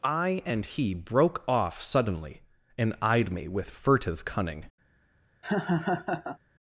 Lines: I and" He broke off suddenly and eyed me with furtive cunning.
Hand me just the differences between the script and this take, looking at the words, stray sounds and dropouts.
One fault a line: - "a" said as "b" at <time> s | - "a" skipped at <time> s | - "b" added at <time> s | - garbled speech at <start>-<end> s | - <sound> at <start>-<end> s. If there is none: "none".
- laugh at 5.4-6.4 s